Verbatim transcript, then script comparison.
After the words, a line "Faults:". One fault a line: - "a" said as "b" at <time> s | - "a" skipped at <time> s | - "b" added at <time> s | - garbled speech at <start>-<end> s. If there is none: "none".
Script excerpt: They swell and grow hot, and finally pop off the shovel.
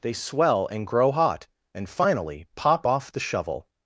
They swell and grow hot, and finally pop off the shovel.
Faults:
none